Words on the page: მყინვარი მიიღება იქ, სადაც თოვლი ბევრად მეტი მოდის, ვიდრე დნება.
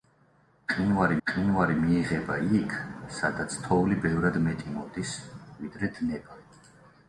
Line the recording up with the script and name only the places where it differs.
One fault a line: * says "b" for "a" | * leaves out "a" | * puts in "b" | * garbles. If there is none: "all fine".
* puts in "მყინვარი"